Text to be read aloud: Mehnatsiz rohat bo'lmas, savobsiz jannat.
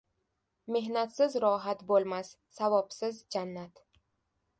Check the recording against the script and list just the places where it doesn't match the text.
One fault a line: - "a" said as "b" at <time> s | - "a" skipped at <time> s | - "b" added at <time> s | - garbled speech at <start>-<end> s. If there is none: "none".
none